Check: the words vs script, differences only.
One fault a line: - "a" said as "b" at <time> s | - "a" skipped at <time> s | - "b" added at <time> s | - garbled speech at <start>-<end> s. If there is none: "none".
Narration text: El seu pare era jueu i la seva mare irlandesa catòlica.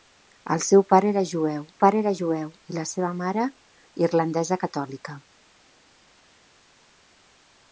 - "pare era jueu" added at 1.8 s